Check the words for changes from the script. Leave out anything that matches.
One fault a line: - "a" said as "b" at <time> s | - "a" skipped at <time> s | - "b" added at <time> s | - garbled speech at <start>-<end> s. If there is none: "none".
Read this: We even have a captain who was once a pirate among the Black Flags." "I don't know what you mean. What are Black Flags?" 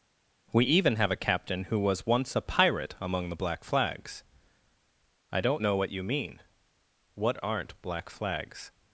- "are" said as "aren't" at 7.4 s